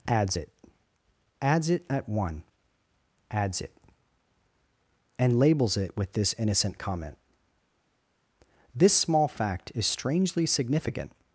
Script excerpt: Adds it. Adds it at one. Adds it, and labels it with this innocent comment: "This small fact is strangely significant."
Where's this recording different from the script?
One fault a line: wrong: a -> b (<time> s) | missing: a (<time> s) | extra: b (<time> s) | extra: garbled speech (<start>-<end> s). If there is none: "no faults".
no faults